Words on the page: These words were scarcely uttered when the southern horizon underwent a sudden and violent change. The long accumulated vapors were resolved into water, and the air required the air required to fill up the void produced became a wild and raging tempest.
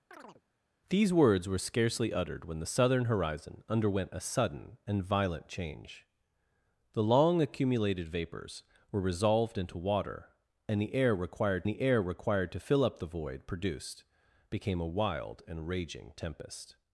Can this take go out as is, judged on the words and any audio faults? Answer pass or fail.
fail